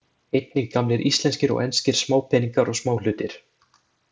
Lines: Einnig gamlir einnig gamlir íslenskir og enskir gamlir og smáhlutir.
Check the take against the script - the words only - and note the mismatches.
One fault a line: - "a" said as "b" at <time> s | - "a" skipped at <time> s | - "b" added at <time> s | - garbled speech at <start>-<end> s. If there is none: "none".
- "einnig gamlir" skipped at 1.0 s
- "gamlir" said as "smápeningar" at 2.0 s